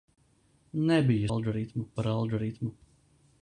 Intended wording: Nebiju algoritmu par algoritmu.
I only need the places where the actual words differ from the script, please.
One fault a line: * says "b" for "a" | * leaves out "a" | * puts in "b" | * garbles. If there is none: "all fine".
all fine